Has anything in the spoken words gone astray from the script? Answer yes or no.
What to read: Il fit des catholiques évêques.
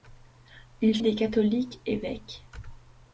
yes